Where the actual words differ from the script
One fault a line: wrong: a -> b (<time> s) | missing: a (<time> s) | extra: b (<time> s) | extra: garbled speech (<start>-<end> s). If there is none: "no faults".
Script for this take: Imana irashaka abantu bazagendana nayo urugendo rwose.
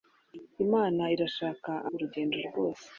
missing: abantu bazagendana nayo (1.7 s)